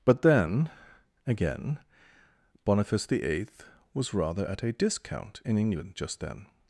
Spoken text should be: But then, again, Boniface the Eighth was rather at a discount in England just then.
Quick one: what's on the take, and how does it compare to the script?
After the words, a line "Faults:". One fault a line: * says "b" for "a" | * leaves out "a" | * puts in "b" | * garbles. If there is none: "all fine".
But then, again, Boniface the Eighth was rather at a discount in England just then.
Faults:
all fine